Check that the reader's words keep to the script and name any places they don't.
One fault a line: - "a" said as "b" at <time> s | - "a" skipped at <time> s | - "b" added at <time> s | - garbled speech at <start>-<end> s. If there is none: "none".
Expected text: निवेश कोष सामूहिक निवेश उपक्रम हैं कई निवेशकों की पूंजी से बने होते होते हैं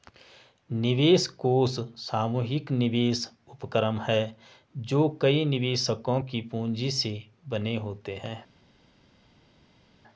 - "जो" added at 4.8 s
- "होते" skipped at 8.2 s